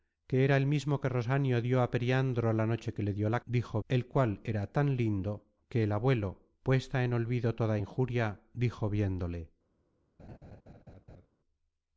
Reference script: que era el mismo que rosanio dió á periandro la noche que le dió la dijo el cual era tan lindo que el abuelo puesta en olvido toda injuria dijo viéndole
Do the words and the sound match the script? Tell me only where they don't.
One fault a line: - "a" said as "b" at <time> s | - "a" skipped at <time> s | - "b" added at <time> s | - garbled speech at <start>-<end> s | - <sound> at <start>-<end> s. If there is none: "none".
- laugh at 10.2-11.3 s